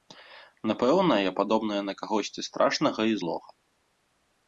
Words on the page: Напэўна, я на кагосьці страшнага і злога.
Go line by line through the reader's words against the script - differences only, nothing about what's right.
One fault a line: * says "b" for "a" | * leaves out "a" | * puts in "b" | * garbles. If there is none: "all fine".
* puts in "падобная"